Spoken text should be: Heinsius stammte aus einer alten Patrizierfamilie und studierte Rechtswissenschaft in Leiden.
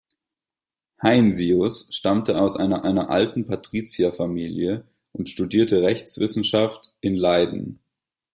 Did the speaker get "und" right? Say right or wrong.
right